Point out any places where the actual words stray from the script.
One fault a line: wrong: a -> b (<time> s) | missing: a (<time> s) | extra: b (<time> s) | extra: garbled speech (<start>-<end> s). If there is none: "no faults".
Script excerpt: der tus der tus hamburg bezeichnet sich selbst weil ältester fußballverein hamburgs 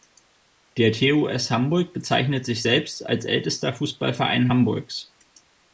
missing: der tus (1.5 s)
wrong: weil -> als (3.1 s)